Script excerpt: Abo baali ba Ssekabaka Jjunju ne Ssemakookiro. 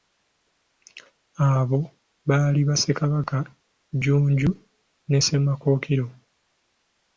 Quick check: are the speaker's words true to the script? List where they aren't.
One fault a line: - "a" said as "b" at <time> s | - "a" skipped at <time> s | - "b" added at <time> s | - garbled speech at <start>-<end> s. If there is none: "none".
none